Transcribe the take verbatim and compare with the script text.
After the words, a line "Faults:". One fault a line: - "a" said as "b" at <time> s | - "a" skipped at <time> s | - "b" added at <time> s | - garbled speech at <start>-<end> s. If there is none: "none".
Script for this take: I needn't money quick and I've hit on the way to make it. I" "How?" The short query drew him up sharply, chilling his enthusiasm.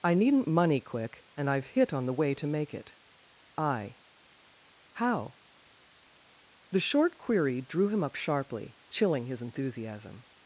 I needn't money quick and I've hit on the way to make it. I" "How?" The short query drew him up sharply, chilling his enthusiasm.
Faults:
none